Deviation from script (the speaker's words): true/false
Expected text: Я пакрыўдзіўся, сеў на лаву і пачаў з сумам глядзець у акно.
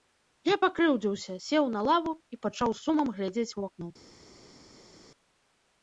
false